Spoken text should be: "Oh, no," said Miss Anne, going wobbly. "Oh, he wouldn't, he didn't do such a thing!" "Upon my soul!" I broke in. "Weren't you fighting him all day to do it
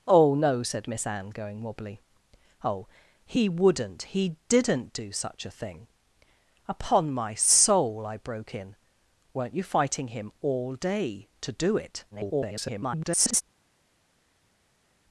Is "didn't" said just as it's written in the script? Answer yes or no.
yes